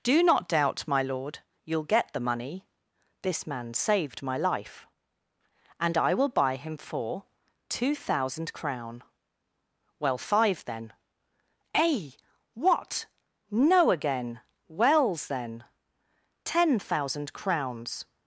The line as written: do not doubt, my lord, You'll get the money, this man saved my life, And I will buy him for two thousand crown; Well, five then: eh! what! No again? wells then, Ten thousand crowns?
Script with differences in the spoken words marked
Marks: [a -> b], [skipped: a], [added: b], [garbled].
do not doubt, my lord, You'll get the money, this man saved my life, And I will buy him for two thousand crown; Well, five then: eh! what! No again? wells then, Ten thousand crowns?